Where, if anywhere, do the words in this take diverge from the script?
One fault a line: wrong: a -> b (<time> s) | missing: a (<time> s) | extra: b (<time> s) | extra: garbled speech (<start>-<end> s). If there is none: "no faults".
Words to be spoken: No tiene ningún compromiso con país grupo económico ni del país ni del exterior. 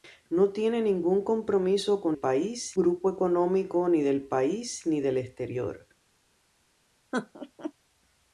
no faults